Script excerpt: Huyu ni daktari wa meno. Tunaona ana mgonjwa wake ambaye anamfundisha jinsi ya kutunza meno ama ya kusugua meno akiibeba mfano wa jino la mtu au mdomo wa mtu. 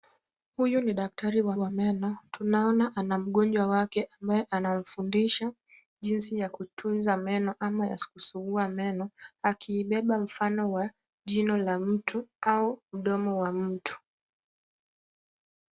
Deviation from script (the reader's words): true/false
true